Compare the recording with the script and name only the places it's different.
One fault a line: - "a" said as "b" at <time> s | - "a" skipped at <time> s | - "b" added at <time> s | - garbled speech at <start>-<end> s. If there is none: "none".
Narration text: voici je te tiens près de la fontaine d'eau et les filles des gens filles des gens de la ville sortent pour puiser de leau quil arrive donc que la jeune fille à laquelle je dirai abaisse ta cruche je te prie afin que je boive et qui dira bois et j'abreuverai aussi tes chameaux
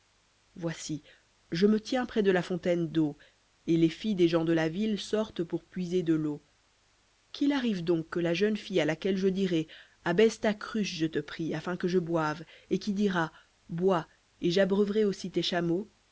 - "te" said as "me" at 1.7 s
- "filles des gens" skipped at 4.5 s